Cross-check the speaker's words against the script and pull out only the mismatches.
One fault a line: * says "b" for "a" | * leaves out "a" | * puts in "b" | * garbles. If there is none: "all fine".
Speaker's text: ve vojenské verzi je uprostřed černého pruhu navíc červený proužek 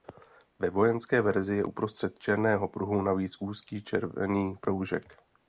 * puts in "úzký"